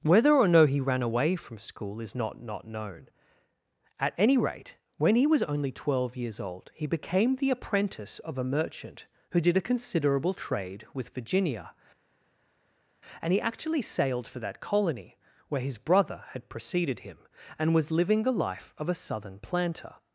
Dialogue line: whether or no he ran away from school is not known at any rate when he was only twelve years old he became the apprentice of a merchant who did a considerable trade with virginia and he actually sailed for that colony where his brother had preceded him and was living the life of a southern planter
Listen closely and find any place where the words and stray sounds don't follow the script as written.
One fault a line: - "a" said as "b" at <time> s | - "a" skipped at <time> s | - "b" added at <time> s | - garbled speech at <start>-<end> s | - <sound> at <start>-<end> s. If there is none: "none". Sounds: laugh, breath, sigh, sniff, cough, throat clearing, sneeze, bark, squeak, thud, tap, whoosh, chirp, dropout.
- "not" added at 2.4 s